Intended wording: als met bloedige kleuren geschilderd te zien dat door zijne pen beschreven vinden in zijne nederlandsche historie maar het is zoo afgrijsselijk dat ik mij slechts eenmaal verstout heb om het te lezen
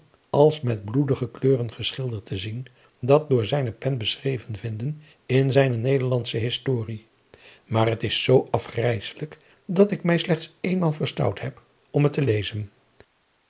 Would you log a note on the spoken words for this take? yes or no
no